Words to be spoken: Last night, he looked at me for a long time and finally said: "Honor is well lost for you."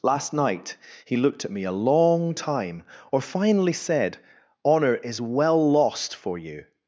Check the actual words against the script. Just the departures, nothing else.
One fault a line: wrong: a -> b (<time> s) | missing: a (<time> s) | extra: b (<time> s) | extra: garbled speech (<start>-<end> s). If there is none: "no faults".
missing: for (1.6 s)
wrong: and -> or (3.1 s)